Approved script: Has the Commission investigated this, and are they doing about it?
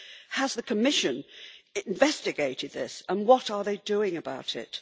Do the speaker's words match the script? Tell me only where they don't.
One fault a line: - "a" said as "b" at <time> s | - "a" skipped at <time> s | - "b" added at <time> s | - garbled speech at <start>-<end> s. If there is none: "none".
- "what" added at 3.3 s